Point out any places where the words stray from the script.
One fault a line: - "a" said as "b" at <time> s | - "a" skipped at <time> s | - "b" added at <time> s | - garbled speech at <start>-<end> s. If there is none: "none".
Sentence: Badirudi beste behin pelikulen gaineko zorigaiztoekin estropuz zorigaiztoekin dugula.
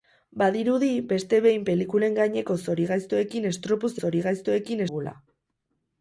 none